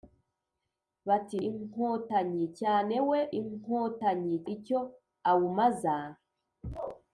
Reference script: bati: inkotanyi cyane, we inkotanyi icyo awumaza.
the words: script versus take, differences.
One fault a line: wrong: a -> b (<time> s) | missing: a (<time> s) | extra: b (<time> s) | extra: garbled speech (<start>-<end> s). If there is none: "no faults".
no faults